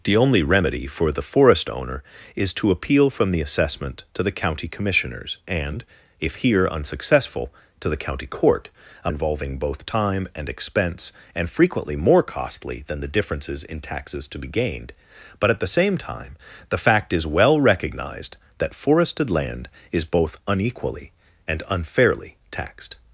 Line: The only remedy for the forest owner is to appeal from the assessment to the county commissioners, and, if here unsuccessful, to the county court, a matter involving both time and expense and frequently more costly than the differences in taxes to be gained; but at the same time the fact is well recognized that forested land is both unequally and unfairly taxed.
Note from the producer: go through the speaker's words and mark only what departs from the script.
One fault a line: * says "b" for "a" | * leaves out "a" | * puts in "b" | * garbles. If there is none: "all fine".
* leaves out "matter"